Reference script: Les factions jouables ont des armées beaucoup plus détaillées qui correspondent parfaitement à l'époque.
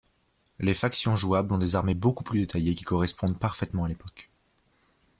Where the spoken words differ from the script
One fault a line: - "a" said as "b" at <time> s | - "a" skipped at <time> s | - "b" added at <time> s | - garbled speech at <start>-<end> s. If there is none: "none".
none